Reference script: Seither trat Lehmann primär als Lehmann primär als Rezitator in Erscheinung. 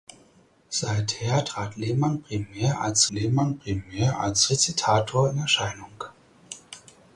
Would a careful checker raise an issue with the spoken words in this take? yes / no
no